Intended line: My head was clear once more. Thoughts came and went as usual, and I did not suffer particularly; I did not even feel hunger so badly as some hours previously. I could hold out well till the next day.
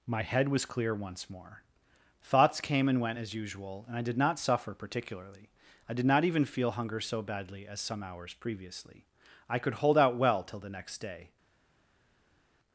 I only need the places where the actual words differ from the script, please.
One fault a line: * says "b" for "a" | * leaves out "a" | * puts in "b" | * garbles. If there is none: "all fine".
all fine